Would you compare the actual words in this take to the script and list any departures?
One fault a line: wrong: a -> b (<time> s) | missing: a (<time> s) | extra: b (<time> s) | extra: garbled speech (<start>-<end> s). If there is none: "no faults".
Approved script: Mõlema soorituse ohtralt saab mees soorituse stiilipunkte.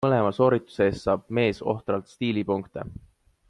wrong: ohtralt -> eest (0.9 s)
wrong: soorituse -> ohtralt (1.6 s)